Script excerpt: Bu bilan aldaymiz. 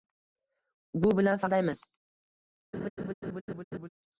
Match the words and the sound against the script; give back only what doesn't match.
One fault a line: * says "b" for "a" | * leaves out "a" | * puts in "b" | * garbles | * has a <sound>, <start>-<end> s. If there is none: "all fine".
* has a laugh, 2.7-3.9 s